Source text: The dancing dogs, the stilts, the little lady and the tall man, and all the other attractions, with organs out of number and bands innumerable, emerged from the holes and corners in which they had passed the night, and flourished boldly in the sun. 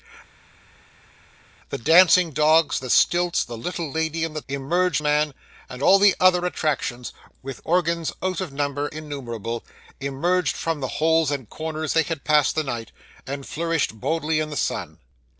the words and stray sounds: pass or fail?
fail